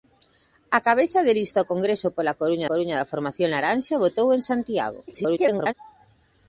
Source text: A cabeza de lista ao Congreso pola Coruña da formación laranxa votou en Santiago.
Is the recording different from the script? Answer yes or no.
yes